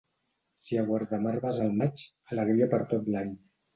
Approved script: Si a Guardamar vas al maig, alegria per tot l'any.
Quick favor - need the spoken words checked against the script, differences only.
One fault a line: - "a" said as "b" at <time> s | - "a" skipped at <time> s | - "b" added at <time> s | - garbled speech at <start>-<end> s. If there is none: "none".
none